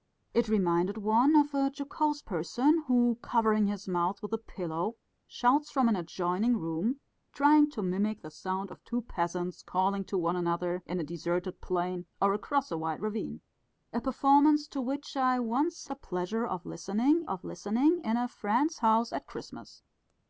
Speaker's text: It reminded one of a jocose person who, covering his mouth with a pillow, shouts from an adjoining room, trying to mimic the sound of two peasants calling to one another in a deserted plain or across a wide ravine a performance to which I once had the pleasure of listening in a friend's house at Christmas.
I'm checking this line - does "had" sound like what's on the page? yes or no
no